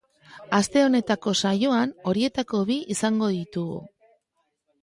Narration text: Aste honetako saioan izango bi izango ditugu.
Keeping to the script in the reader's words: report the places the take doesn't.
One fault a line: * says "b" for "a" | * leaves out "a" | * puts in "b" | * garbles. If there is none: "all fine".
* says "horietako" for "izango"